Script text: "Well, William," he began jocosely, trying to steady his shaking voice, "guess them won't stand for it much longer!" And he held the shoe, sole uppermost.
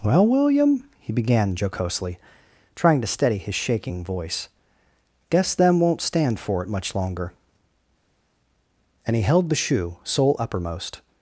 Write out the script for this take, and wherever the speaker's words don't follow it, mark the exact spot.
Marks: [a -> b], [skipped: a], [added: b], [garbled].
"Well, William," he began jocosely, trying to steady his shaking voice, "guess them won't stand for it much longer!" And he held the shoe, sole uppermost.